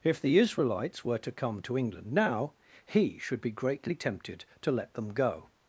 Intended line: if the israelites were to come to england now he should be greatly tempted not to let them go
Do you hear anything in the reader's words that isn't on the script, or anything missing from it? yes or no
yes